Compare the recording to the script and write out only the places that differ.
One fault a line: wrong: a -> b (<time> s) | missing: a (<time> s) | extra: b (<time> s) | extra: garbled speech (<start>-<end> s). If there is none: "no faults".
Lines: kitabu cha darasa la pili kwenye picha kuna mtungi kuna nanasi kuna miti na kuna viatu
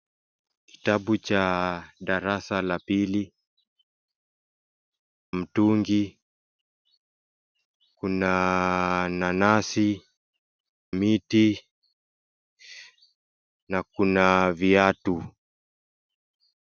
missing: kwenye picha kuna (3.3 s)
missing: kuna (10.0 s)